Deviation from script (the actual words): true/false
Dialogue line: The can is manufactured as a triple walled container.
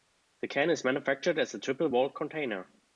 false